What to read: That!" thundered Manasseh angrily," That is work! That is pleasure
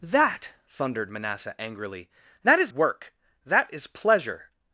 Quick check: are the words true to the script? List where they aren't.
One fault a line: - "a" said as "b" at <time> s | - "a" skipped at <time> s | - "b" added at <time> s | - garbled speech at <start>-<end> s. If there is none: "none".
none